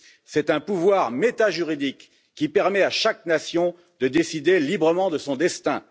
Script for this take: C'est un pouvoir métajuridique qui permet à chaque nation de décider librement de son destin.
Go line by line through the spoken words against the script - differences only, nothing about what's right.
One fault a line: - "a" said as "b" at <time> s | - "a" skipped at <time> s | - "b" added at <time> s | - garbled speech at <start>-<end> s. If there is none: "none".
none